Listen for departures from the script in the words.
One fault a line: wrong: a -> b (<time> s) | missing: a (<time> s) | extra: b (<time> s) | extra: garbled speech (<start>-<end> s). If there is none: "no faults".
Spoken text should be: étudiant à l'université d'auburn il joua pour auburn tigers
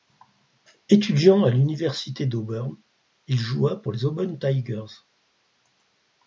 extra: les (3.9 s)